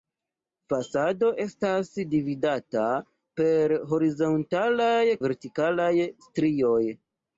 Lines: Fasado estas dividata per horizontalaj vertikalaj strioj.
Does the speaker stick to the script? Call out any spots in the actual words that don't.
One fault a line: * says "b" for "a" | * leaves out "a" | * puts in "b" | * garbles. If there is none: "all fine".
all fine